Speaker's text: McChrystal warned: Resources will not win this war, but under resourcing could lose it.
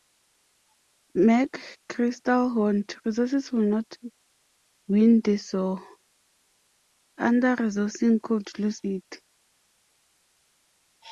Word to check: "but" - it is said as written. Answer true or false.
false